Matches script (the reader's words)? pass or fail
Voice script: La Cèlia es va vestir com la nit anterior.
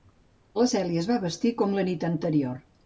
pass